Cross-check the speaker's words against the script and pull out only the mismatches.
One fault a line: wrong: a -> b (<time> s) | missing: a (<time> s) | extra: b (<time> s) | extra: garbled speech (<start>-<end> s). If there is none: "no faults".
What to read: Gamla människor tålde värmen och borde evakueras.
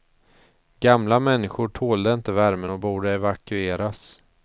extra: inte (2.1 s)